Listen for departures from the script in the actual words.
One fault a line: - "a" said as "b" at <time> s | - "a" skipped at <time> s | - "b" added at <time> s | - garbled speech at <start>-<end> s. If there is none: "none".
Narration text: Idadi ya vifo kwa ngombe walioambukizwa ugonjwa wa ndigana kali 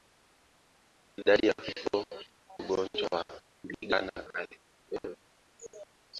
- "kwa ngombe walioambukizwa" skipped at 2.1 s